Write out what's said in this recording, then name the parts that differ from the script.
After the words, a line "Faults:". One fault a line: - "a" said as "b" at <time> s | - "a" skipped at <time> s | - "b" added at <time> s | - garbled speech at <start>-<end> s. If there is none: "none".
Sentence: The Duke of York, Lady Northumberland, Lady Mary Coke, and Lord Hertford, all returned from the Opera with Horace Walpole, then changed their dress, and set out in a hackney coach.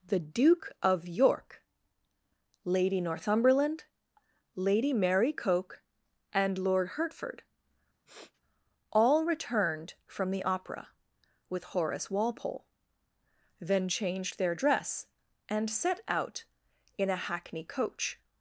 The Duke of York, Lady Northumberland, Lady Mary Coke, and Lord Hertford, all returned from the Opera with Horace Walpole, then changed their dress, and set out in a hackney coach.
Faults:
none